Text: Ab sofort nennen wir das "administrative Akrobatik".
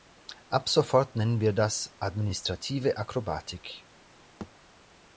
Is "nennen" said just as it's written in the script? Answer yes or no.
yes